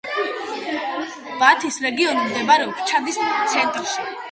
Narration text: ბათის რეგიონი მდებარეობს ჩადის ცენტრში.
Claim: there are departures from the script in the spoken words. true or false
false